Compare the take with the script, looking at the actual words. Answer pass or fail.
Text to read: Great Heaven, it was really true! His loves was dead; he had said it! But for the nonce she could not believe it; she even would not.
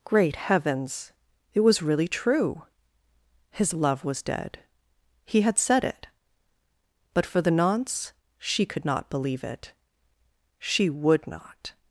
fail